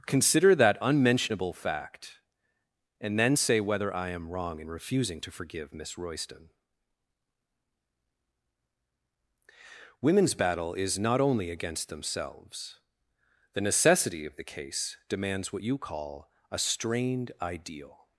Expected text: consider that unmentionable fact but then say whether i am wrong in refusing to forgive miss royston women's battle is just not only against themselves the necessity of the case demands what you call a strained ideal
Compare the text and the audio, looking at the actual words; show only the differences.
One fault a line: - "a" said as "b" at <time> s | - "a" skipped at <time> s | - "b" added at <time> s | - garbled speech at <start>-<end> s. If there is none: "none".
- "but" said as "and" at 3.0 s
- "just" skipped at 11.0 s